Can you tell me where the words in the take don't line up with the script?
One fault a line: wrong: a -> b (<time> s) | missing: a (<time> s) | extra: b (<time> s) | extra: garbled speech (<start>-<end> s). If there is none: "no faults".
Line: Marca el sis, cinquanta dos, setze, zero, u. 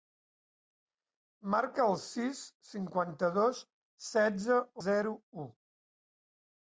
no faults